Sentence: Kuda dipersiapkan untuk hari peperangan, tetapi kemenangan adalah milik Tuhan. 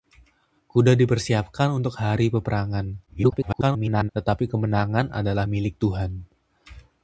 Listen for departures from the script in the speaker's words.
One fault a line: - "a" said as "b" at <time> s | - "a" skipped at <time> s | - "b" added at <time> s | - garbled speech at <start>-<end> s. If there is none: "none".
- garbled speech at 3.1-4.1 s